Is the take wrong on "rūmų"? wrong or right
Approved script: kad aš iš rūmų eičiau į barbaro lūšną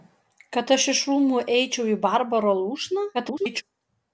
right